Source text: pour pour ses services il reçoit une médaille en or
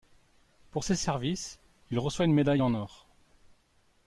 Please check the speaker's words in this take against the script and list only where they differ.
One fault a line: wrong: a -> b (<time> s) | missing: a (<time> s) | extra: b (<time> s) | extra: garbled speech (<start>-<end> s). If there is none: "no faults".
missing: pour (0.8 s)